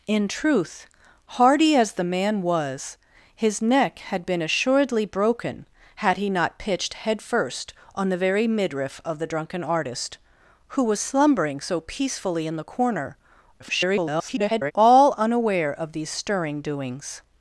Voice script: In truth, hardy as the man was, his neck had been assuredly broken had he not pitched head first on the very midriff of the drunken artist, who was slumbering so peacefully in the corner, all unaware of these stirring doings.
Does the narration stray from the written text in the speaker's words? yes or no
yes